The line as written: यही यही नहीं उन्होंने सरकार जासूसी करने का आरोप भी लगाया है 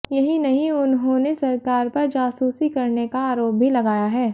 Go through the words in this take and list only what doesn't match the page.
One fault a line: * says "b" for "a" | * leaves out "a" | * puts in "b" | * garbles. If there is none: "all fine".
* leaves out "यही"
* puts in "पर"